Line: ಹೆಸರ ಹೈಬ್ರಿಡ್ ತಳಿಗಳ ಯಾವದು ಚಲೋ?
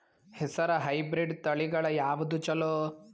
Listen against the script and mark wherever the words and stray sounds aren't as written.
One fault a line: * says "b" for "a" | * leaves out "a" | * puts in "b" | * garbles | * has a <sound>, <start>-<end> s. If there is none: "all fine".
all fine